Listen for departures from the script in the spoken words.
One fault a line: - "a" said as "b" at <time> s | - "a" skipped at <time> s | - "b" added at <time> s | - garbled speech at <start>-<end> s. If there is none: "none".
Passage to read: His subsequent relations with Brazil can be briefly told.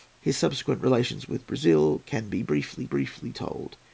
- "briefly" added at 2.9 s